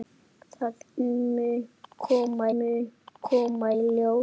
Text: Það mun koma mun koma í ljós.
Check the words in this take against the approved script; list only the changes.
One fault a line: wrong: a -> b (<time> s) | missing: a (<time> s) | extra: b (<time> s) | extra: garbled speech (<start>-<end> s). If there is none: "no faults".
no faults